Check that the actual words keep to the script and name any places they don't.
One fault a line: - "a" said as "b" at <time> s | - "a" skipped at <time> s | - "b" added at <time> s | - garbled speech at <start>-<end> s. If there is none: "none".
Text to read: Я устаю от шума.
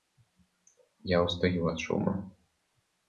none